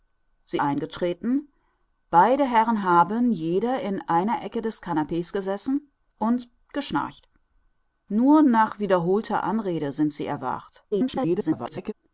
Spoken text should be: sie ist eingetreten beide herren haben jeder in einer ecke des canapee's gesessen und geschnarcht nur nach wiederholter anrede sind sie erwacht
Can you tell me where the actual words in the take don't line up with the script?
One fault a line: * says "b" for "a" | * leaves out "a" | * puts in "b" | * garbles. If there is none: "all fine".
* leaves out "ist"
* garbles